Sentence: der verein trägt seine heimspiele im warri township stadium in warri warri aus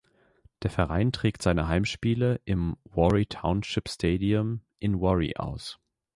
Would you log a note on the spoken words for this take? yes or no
yes